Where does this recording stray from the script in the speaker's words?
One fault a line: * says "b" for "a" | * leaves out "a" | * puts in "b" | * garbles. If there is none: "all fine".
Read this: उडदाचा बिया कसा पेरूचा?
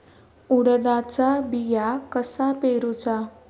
all fine